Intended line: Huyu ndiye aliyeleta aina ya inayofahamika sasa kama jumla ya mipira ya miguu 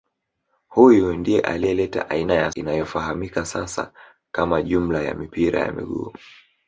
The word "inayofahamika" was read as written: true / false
true